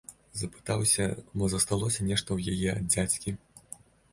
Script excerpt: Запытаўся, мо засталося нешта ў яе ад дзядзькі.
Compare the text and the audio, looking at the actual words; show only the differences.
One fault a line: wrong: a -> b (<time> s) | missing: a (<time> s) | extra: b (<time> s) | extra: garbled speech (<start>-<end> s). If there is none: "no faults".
no faults